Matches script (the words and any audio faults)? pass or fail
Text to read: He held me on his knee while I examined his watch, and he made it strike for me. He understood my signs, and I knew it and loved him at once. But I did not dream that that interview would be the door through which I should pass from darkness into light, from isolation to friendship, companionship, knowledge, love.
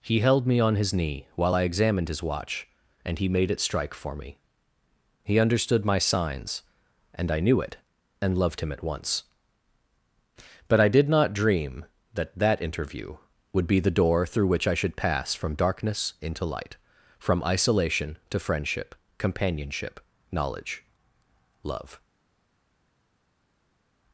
pass